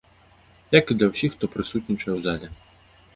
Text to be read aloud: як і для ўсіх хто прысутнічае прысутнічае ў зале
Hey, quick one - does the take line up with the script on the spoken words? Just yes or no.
no